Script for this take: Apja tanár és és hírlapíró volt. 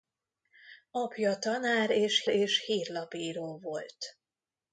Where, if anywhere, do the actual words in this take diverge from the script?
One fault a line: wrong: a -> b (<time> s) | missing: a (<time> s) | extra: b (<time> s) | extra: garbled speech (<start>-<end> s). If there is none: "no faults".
no faults